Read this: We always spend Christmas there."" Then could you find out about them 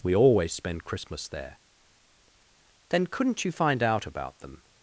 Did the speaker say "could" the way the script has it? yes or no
no